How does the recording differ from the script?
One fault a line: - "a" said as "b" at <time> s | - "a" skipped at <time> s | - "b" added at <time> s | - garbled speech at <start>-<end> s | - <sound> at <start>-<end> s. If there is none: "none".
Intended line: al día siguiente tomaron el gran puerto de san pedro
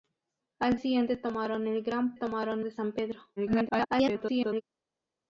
- "día" skipped at 0.8 s
- "puerto" said as "tomaron" at 2.1 s
- garbled speech at 3.4-4.6 s